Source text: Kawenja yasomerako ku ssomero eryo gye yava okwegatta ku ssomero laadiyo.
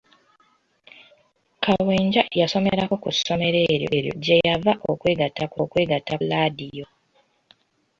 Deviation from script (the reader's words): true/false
true